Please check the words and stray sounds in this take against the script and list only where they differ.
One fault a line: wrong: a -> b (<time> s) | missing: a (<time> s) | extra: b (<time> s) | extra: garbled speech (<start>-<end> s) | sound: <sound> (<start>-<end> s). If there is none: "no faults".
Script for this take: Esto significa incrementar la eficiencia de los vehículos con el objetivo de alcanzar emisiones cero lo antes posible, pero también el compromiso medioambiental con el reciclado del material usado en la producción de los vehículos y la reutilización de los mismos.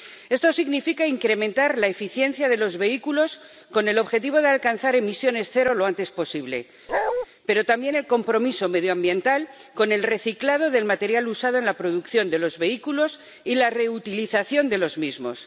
sound: bark (6.9-7.3 s)